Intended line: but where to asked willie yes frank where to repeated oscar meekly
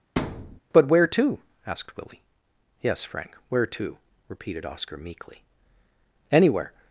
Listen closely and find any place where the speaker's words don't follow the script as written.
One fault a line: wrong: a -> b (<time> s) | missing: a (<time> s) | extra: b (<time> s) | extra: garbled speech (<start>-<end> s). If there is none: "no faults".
extra: anywhere (6.3 s)